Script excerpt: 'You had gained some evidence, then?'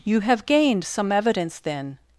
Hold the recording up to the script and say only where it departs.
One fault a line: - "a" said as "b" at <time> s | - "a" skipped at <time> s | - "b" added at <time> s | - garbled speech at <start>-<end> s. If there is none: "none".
- "had" said as "have" at 0.2 s